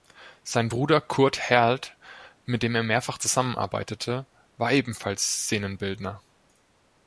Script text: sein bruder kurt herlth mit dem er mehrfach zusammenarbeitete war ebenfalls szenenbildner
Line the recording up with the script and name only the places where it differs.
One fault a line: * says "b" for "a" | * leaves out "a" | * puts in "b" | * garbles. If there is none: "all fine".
all fine